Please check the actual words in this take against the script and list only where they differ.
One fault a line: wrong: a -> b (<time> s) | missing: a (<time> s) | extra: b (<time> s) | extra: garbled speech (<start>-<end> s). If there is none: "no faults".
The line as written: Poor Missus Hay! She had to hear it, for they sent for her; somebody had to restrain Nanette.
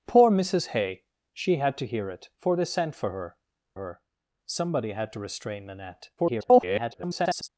extra: her (3.8 s)
extra: garbled speech (6.2-7.5 s)